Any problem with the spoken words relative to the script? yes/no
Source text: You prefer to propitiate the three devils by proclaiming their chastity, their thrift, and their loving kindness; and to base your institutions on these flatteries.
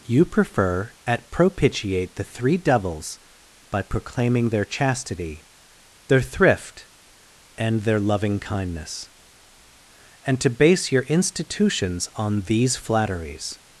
yes